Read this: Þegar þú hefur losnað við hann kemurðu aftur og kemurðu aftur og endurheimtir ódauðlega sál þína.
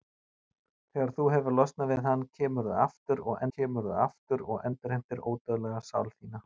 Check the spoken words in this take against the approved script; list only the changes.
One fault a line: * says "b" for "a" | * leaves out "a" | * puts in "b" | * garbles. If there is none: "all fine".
all fine